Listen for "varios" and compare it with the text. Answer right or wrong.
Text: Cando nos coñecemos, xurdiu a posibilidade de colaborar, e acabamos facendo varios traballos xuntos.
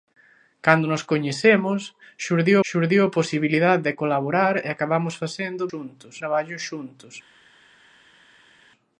wrong